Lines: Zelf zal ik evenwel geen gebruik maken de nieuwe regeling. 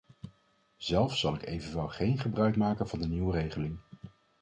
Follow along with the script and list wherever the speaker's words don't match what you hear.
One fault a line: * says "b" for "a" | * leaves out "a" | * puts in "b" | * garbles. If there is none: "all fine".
* puts in "van"